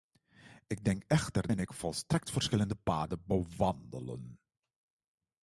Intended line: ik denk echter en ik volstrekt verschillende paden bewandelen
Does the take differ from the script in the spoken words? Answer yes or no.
no